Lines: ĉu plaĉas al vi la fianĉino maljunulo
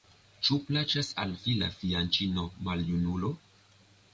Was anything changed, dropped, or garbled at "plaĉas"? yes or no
no